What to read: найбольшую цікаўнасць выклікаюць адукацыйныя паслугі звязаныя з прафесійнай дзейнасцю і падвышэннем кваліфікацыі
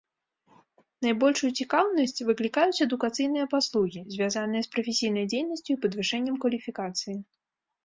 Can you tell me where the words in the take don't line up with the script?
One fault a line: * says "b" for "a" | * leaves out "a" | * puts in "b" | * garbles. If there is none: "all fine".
all fine